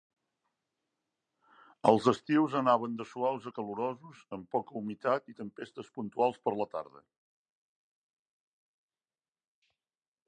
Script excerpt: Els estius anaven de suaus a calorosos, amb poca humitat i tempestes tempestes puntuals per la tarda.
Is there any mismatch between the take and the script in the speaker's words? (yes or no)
yes